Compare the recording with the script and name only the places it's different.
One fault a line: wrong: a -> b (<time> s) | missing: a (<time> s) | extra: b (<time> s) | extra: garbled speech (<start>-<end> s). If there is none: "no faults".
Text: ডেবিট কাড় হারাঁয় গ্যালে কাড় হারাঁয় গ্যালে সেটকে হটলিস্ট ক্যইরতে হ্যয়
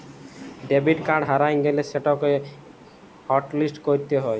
missing: কাড় হারাঁয় গ্যালে (1.8 s)